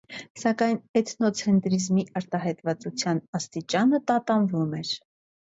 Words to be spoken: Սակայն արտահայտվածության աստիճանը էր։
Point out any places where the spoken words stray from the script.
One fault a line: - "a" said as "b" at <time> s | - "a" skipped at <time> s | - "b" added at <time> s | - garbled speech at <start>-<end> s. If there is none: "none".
- "էթնոցենտրիզմի" added at 1.0 s
- "տատանվում" added at 4.1 s